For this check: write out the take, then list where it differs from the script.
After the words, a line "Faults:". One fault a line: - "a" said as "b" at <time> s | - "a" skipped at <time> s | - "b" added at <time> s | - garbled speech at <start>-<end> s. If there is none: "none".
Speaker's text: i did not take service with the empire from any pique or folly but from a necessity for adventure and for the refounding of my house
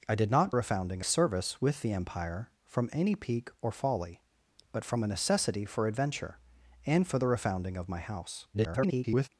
i did not refounding service with the empire from any pique or folly but from a necessity for adventure and for the refounding of my house [garbled]
Faults:
- "take" said as "refounding" at 0.5 s
- garbled speech at 8.5-9.3 s